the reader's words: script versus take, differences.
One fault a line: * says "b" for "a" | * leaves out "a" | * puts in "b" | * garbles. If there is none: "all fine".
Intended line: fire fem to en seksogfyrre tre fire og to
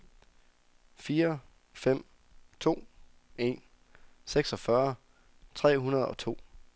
* says "hundrede" for "fire"